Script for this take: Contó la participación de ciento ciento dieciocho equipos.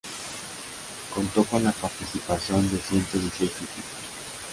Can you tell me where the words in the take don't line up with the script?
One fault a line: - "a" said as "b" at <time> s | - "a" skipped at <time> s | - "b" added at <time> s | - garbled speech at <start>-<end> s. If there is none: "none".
- "con" added at 1.4 s
- "ciento" skipped at 3.2 s